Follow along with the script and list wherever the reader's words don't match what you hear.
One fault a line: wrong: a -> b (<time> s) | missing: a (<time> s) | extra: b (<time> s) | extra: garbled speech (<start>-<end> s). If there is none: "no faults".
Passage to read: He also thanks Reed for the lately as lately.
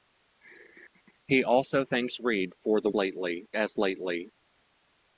no faults